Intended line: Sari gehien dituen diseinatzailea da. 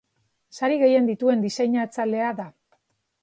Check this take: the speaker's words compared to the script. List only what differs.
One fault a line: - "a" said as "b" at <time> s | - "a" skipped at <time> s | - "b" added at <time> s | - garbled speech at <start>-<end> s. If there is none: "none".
none